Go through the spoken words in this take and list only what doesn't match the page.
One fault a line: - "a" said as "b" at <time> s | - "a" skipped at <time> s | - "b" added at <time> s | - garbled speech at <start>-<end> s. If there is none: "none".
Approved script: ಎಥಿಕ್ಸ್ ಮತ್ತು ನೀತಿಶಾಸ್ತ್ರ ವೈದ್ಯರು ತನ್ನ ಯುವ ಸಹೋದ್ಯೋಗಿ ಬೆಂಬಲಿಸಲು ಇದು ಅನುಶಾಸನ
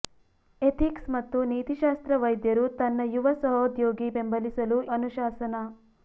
- "ಇದು" skipped at 4.8 s